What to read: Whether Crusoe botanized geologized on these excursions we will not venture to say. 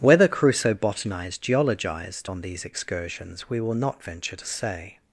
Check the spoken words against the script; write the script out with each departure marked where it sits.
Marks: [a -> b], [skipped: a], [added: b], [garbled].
Whether Crusoe botanized geologized on these excursions we will not venture to say.